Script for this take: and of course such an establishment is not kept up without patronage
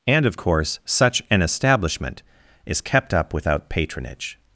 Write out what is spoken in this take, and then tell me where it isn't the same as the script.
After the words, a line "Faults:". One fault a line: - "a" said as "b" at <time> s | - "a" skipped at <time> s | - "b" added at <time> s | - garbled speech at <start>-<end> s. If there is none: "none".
and of course such an establishment is kept up without patronage
Faults:
- "not" skipped at 2.8 s